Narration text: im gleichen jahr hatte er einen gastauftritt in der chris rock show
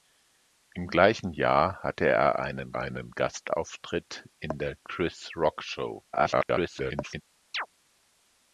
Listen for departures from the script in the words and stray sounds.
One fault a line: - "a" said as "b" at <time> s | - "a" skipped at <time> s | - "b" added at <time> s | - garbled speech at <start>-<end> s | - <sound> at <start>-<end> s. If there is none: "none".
- "einen" added at 2.8 s
- garbled speech at 6.1-7.2 s
- chirp at 7.5-7.7 s